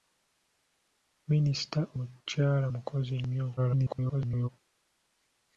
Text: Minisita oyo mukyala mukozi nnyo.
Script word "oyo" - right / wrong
wrong